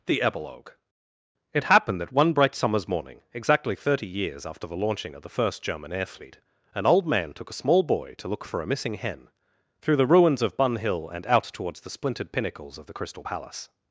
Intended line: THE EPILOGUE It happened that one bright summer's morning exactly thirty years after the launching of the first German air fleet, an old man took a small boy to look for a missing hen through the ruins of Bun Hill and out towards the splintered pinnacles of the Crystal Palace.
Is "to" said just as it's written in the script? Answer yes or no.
yes